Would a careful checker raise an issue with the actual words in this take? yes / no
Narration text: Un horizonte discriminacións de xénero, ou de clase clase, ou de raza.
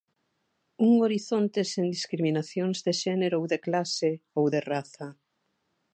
yes